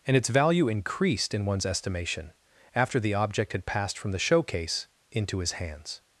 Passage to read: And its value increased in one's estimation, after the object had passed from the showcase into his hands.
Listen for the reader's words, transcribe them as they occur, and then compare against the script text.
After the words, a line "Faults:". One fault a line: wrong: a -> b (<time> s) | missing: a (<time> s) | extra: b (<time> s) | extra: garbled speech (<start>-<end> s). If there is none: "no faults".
And its value increased in one's estimation, after the object had passed from the showcase into his hands.
Faults:
no faults